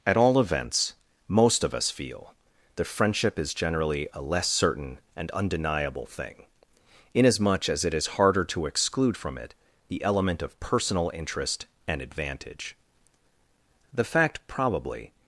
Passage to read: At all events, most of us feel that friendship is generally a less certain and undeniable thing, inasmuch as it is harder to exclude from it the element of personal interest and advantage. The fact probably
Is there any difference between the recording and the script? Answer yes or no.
no